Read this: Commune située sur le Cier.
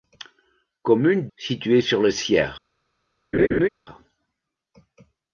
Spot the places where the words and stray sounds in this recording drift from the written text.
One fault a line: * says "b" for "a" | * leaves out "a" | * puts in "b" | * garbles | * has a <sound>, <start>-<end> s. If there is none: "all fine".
* has a laugh, 3.3-3.7 s